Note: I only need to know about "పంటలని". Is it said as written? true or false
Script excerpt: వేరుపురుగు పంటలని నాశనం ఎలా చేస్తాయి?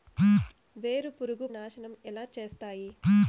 false